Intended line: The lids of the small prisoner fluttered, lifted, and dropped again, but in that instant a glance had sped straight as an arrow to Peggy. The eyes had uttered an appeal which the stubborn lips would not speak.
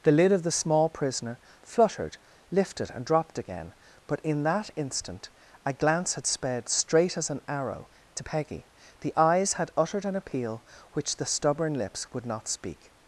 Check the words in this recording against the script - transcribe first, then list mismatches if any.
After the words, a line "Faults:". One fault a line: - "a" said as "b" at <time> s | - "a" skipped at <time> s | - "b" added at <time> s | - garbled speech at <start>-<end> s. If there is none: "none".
The lid of the small prisoner fluttered, lifted, and dropped again, but in that instant a glance had sped straight as an arrow to Peggy. The eyes had uttered an appeal which the stubborn lips would not speak.
Faults:
- "lids" said as "lid" at 0.1 s